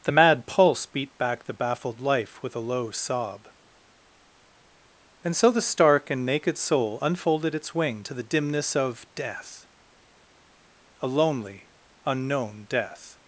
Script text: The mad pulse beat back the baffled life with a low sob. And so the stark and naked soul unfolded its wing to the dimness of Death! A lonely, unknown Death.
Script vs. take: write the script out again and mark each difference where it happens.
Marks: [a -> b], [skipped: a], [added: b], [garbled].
The mad pulse beat back the baffled life with a low sob. And so the stark and naked soul unfolded its wing to the dimness of Death! A lonely, unknown Death.